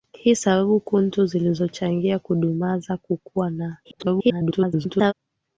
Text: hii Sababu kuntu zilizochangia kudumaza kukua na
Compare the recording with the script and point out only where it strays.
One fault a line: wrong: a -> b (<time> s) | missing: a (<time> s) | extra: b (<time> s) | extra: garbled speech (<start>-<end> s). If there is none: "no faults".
extra: garbled speech (3.8-5.1 s)